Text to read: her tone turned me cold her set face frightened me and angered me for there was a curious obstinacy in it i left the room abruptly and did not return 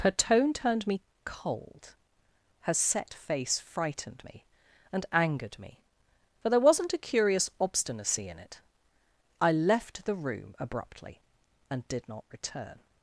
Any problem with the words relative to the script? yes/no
yes